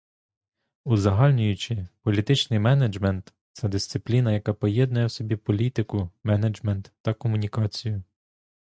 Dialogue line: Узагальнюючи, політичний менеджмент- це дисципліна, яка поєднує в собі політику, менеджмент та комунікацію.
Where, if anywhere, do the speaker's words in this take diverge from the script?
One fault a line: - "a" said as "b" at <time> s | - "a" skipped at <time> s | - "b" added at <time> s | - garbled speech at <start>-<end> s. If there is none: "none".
none